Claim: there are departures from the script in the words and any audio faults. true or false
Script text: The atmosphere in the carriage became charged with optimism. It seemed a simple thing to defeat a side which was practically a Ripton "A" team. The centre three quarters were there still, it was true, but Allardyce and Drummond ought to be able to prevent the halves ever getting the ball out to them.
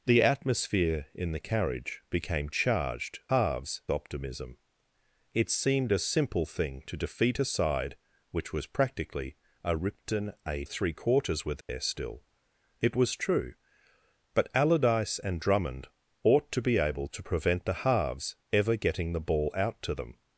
true